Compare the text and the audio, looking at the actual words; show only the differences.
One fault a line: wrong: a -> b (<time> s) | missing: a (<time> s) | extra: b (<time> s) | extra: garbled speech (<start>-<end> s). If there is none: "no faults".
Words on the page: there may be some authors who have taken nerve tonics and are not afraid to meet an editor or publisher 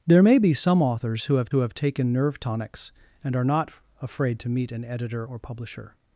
extra: who have (1.5 s)